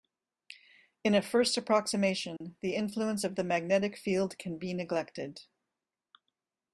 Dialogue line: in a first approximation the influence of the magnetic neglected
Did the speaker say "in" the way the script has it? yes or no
yes